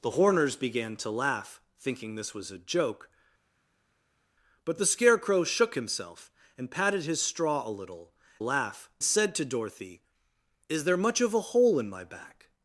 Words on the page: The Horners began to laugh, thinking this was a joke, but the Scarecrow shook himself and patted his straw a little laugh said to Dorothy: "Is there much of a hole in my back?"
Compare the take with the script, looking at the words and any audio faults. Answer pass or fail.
pass